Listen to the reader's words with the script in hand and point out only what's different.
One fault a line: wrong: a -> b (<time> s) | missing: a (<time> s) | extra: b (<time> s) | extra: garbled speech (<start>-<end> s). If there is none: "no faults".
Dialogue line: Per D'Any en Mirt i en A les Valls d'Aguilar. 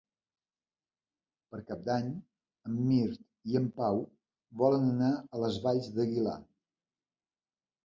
extra: Cap (1.7 s)
extra: Pau volen anar (3.8 s)